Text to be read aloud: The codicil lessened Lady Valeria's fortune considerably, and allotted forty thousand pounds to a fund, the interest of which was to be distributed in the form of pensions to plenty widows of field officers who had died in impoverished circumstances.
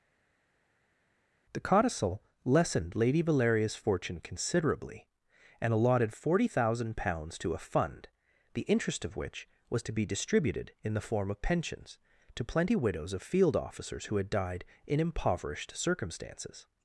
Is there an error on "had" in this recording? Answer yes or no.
no